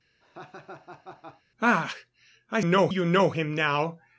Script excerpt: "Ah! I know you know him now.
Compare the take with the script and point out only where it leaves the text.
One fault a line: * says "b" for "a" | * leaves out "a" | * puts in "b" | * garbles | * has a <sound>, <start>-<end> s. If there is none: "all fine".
* has a laugh, 0.2-1.4 s